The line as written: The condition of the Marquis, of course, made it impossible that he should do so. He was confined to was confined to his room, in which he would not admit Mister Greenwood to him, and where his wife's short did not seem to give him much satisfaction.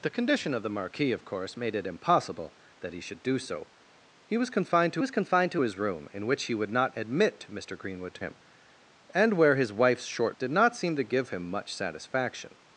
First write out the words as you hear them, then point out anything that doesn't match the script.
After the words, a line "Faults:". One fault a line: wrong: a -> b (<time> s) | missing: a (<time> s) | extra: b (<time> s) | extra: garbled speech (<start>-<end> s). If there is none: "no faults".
The condition of the Marquis, of course, made it impossible that he should do so. He was confined to was confined to his room, in which he would not admit Mister Greenwood to him, and where his wife's short did not seem to give him much satisfaction.
Faults:
no faults